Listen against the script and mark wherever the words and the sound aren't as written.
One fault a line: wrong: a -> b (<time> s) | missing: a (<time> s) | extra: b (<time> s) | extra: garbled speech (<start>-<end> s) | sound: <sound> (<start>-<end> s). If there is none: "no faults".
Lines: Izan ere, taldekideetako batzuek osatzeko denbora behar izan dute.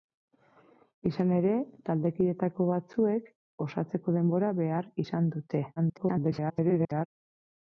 extra: garbled speech (5.8-7.1 s)